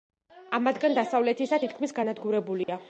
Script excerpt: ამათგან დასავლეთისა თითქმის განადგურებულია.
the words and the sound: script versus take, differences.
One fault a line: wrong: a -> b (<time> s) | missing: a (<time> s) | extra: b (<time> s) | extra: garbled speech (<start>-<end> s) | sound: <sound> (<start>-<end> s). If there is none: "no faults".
sound: dropout (2.6-2.7 s)